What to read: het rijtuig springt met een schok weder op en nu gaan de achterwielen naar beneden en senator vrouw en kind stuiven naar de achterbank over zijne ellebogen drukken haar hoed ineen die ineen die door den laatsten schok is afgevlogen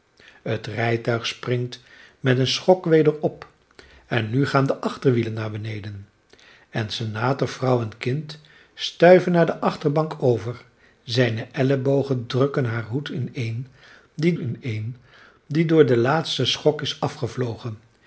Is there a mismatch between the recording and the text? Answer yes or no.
no